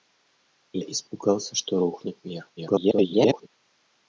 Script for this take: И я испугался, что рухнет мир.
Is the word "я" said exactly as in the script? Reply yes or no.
no